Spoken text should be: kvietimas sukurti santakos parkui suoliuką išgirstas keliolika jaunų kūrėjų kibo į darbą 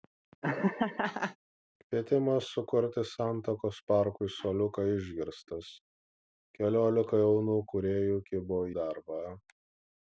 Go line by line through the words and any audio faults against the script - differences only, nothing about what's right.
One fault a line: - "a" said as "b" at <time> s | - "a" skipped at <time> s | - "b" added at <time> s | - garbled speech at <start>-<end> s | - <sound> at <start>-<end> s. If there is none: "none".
- laugh at 0.4-1.4 s
- "į" skipped at 8.6 s